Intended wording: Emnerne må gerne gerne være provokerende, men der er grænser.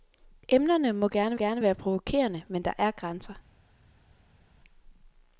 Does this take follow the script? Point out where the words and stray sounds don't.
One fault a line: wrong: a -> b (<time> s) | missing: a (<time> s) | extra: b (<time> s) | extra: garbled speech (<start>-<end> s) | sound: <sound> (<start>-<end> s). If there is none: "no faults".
no faults